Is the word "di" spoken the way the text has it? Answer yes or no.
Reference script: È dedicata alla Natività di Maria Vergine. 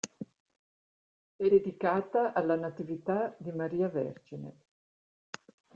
yes